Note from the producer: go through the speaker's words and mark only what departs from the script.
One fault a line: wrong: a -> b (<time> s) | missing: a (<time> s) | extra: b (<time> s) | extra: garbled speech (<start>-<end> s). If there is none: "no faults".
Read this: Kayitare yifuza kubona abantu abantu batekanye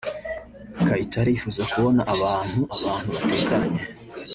no faults